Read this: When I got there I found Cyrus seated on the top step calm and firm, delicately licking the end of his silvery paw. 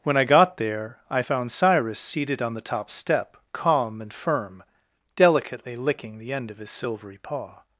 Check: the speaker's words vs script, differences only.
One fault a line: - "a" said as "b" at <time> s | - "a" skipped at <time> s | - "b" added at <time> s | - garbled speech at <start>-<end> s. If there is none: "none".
none